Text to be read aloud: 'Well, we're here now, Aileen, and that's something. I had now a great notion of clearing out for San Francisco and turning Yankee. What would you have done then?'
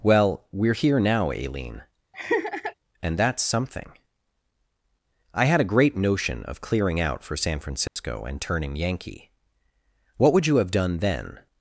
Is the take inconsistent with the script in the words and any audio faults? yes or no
yes